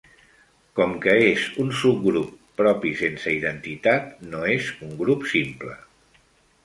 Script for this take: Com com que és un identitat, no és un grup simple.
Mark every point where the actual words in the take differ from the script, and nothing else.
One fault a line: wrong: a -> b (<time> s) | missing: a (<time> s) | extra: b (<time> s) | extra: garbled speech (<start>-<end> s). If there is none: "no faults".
missing: com (0.9 s)
extra: subgrup propi sense (1.8 s)